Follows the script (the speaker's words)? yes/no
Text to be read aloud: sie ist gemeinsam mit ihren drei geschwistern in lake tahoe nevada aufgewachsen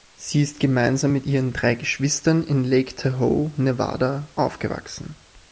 yes